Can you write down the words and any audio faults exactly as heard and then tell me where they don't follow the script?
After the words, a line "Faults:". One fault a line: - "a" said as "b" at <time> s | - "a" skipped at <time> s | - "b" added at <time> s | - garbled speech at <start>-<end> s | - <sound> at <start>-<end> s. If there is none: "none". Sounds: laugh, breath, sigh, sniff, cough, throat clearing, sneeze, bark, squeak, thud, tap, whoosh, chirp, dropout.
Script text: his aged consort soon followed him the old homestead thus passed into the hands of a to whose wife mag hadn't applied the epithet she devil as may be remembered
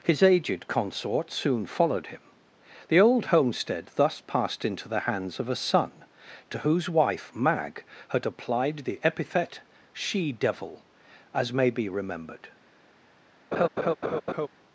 his aged consort soon followed him the old homestead thus passed into the hands of a son to whose wife mag had applied the epithet she devil as may be remembered
Faults:
- "son" added at 5.5 s
- "hadn't" said as "had" at 8.1 s
- laugh at 13.5-14.5 s